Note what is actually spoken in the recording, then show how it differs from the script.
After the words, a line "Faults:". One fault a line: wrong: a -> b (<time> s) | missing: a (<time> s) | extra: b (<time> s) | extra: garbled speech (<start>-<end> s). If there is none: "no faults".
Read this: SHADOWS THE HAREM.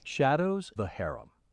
SHADOWS THE HAREM.
Faults:
no faults